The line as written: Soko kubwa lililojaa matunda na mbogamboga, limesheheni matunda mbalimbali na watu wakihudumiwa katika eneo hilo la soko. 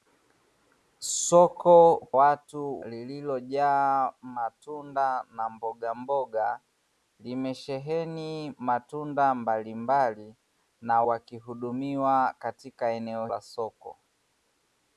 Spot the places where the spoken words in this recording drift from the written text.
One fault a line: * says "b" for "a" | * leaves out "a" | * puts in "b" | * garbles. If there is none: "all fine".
* says "watu" for "kubwa"
* leaves out "watu"
* leaves out "hilo"